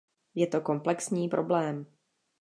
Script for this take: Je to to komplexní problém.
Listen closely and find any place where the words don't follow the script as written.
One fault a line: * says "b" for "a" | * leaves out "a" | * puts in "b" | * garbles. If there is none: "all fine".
* leaves out "to"